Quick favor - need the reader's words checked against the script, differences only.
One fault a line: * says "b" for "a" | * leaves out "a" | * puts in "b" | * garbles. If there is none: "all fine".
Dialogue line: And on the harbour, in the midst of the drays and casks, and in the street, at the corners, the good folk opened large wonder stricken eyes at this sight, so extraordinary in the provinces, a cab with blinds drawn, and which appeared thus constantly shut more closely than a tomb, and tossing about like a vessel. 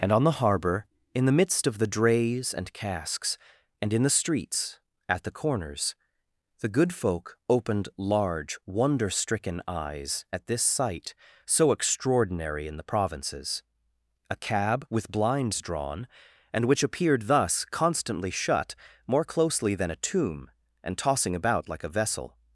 * says "streets" for "street"